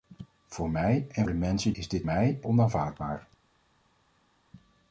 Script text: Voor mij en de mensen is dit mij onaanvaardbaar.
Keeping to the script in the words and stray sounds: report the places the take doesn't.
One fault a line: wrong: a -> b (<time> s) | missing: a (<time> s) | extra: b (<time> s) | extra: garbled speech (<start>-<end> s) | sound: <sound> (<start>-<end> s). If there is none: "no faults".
no faults